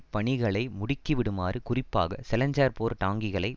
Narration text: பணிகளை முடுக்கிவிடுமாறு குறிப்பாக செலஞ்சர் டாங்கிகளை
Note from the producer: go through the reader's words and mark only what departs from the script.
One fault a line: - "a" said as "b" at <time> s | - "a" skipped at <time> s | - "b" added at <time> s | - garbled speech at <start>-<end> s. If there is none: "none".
- "போர்" added at 2.7 s